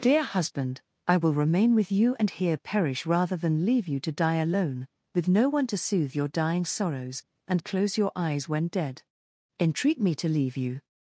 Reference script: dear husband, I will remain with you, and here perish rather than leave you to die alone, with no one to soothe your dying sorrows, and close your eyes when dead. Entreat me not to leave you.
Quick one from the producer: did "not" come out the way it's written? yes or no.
no